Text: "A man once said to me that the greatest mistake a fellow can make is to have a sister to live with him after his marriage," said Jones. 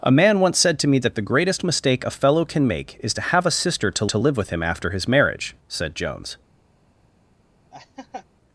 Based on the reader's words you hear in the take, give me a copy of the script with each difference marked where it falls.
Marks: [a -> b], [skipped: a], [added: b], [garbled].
"A man once said to me that the greatest mistake a fellow can make is to have a sister to [added: to] live with him after his marriage," said Jones.